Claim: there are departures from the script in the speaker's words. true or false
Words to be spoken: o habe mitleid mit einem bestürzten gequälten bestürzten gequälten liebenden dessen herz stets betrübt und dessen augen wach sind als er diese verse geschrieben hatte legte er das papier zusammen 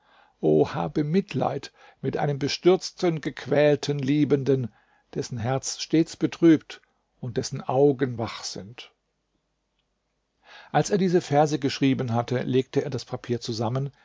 true